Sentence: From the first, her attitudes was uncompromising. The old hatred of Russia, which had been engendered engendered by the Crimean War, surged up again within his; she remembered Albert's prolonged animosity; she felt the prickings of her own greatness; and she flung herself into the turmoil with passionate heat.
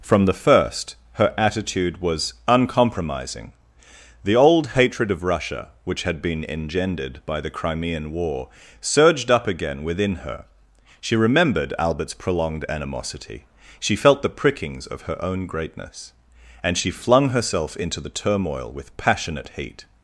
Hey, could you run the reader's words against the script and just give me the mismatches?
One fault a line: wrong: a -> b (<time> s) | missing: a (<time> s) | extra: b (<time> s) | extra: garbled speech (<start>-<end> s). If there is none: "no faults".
wrong: attitudes -> attitude (1.4 s)
missing: engendered (7.2 s)
wrong: his -> her (10.3 s)